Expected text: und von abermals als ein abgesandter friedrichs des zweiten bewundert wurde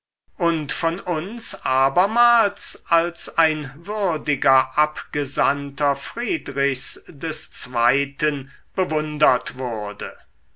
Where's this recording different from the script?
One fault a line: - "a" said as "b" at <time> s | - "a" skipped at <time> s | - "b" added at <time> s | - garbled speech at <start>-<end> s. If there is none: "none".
- "uns" added at 1.0 s
- "würdiger" added at 3.8 s